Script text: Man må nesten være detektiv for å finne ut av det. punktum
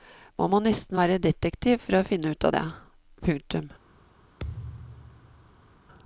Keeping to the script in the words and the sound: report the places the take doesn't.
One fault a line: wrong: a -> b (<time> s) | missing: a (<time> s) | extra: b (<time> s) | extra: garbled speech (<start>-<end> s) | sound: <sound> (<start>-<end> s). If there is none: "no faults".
sound: thud (4.4-5.7 s)